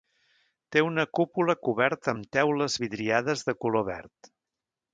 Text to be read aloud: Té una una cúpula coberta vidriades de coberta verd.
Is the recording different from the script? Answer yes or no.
yes